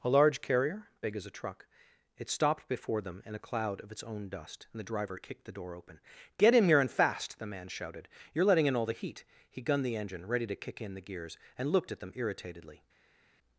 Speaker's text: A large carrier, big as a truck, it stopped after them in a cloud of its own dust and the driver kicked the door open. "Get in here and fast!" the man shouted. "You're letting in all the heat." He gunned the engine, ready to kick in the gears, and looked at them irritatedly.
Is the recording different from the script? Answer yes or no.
yes